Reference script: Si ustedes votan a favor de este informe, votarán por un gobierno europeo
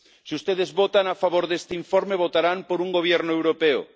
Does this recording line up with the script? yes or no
yes